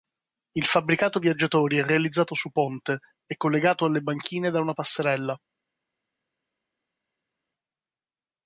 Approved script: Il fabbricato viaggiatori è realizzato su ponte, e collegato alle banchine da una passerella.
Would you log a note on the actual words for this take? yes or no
no